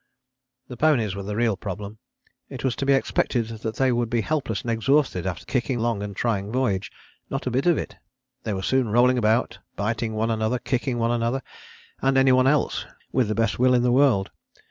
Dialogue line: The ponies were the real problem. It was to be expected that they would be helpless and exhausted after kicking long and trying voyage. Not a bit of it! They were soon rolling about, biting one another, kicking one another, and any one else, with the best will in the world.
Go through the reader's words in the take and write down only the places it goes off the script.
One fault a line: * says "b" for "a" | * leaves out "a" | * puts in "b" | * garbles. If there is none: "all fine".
all fine